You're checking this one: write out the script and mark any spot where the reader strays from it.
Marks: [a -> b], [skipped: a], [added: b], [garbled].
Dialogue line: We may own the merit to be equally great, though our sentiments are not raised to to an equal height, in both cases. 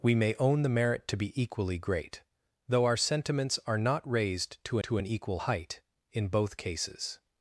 We may own the merit to be equally great, though our sentiments are not raised to to an equal height, in both cases.